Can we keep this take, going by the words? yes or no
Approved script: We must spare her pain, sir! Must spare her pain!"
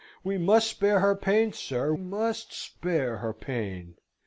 yes